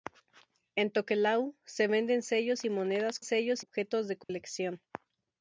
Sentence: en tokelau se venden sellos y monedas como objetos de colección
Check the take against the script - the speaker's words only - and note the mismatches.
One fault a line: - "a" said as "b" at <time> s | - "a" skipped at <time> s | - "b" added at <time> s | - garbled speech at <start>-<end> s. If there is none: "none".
- "como" said as "sellos" at 3.2 s